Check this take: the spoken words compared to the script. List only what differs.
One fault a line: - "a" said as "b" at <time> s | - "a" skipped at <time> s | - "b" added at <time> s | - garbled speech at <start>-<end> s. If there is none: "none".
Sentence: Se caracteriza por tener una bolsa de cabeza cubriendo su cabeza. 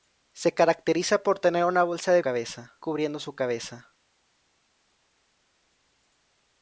none